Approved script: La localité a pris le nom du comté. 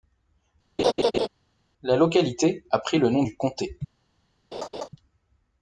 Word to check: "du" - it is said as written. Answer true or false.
true